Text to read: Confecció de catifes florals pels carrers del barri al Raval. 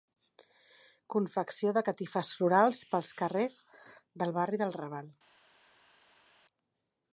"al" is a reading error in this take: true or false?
true